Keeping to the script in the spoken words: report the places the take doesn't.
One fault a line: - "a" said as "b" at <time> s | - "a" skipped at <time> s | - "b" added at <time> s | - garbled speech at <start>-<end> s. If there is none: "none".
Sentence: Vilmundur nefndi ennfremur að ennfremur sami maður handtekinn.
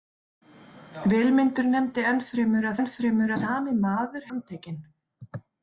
none